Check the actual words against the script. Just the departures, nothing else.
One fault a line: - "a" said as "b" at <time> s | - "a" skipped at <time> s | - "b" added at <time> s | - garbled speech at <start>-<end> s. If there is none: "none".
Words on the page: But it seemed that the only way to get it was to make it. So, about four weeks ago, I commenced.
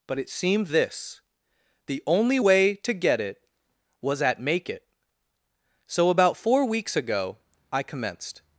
- "that" said as "this" at 0.6 s
- "to" said as "at" at 4.2 s